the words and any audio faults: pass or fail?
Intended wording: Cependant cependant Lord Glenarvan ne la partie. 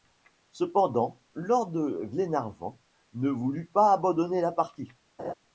fail